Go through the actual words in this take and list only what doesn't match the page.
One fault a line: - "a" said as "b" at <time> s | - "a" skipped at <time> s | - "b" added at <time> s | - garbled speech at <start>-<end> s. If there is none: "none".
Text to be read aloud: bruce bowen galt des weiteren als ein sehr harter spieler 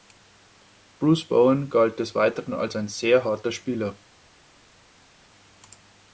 none